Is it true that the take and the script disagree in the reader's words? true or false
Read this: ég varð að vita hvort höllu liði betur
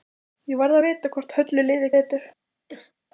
false